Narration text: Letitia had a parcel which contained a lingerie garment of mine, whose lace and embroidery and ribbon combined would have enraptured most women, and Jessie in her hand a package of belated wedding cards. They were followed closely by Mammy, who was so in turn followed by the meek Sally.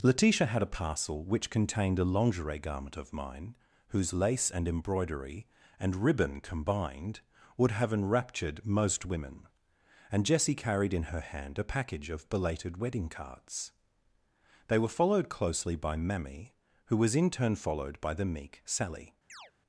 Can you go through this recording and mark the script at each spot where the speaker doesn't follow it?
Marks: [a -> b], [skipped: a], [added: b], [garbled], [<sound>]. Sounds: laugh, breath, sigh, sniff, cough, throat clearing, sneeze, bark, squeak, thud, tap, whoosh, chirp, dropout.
Letitia had a parcel which contained a lingerie garment of mine, whose lace and embroidery and ribbon combined would have enraptured most women, and Jessie [added: carried] in her hand a package of belated wedding cards. They were followed closely by Mammy, who was [skipped: so] in turn followed by the meek Sally. [chirp]